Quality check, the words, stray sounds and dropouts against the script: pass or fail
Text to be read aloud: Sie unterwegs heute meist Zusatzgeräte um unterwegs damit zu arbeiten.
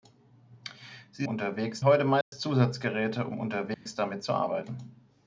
fail